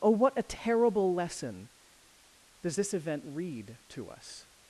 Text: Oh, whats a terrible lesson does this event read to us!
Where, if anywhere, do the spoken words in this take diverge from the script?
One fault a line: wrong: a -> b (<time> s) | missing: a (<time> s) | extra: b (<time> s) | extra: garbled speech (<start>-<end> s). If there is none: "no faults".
wrong: whats -> what (0.1 s)